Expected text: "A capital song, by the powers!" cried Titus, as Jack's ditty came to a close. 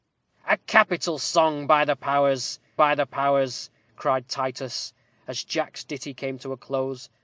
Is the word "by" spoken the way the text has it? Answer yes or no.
yes